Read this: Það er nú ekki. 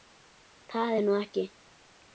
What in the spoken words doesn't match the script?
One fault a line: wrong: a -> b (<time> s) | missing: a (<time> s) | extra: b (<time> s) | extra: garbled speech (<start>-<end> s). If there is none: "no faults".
no faults